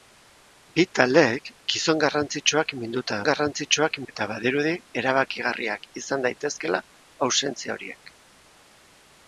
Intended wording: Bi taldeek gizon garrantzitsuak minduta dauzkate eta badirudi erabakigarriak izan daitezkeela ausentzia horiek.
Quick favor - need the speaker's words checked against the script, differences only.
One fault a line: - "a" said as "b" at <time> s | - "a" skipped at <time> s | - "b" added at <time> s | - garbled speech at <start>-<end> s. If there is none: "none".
- "dauzkate" said as "garrantzitsuak" at 3.3 s